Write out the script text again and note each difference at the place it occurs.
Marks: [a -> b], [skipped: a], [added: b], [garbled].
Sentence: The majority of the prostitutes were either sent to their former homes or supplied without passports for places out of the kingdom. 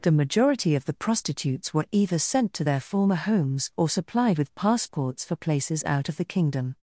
The majority of the prostitutes were either sent to their former homes or supplied [without -> with] passports for places out of the kingdom.